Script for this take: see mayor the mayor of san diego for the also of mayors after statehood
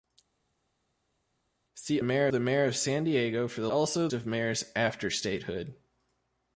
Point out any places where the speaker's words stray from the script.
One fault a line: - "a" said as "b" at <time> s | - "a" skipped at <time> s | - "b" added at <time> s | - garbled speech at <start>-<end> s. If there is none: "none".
none